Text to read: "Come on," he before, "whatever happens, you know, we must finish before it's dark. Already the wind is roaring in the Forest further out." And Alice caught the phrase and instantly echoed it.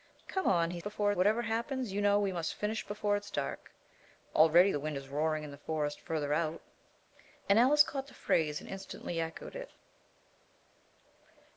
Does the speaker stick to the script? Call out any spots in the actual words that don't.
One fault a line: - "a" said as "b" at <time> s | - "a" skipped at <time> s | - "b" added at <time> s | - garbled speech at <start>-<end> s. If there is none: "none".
none